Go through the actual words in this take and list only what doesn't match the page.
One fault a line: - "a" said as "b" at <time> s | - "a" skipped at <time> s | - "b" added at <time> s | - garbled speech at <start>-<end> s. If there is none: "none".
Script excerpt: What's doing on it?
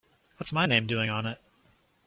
- "my name" added at 0.5 s